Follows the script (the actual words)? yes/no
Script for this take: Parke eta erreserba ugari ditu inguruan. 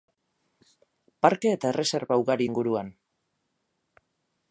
no